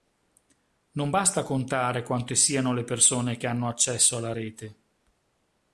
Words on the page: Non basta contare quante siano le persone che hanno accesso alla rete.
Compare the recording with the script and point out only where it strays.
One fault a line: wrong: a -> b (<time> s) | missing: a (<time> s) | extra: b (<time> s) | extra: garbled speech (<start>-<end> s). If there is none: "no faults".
no faults